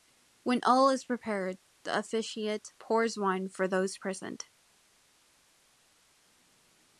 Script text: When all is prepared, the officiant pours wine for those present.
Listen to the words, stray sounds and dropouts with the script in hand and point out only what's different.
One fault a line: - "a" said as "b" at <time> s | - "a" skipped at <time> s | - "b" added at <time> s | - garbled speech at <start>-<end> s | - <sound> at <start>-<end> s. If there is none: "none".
none